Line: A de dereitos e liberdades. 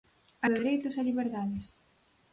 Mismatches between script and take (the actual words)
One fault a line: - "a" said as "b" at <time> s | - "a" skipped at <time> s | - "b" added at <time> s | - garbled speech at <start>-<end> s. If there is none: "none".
none